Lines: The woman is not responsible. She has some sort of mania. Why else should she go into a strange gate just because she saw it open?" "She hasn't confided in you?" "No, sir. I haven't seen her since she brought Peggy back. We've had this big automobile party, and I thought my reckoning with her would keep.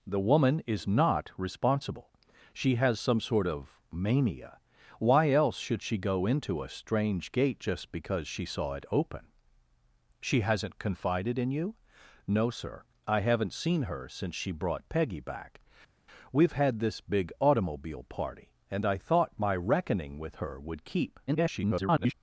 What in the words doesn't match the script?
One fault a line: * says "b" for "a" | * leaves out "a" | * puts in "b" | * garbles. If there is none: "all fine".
* garbles